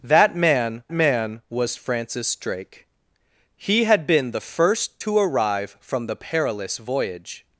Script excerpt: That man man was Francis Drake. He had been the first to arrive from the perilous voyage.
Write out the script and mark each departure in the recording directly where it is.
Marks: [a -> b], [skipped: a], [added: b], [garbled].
That man man was Francis Drake. He had been the first to arrive from the perilous voyage.